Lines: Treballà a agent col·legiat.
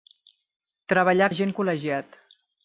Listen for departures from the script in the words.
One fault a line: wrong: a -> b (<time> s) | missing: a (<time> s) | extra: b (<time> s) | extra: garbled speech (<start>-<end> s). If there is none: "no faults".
no faults